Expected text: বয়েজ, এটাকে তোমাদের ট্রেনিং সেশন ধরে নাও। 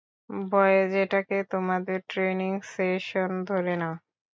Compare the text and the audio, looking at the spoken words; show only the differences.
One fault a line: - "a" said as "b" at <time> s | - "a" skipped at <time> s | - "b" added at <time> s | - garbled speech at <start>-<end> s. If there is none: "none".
none